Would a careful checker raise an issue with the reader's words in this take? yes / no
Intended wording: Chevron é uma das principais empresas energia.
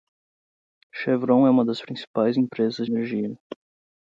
no